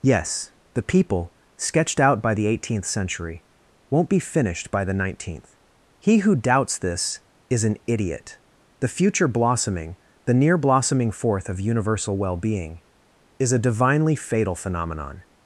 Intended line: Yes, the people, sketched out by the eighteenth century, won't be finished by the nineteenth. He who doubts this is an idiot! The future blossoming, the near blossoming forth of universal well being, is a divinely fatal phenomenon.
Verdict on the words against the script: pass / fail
pass